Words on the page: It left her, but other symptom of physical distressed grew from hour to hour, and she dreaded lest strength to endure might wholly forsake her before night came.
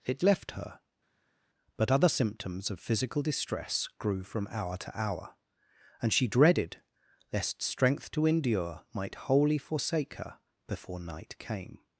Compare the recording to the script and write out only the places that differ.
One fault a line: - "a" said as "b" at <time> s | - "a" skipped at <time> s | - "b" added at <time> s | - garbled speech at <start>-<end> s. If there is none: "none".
- "symptom" said as "symptoms" at 2.1 s
- "distressed" said as "distress" at 3.2 s